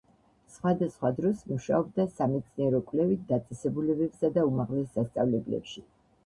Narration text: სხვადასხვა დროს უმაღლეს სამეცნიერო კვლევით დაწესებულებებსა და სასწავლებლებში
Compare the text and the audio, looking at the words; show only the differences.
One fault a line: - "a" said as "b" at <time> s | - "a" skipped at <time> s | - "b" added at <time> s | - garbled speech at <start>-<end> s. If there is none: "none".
- "უმაღლეს" said as "მუშაობდა" at 1.5 s
- "უმაღლეს" added at 4.5 s